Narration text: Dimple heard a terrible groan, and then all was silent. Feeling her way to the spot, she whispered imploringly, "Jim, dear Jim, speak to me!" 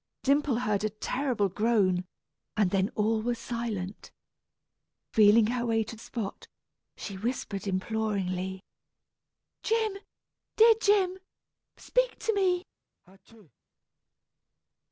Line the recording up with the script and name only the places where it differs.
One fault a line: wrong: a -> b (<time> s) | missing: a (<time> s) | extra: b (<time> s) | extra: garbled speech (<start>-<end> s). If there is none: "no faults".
missing: the (6.0 s)